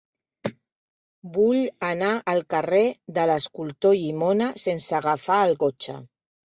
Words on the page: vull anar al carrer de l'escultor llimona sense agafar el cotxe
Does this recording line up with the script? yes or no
yes